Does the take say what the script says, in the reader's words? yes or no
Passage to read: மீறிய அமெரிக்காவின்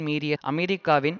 yes